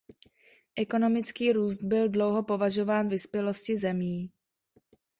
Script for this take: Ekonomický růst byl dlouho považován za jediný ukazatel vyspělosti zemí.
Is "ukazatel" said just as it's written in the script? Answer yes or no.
no